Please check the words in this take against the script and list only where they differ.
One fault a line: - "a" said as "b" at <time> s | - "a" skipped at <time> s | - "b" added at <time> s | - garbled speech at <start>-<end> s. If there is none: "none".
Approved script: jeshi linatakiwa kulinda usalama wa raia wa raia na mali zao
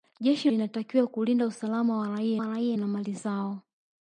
none